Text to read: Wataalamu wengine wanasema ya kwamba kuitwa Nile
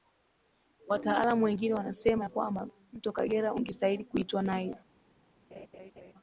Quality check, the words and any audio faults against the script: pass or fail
fail